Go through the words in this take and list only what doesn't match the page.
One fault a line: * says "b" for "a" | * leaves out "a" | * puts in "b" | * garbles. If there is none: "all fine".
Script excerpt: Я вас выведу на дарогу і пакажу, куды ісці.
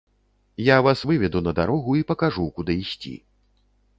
all fine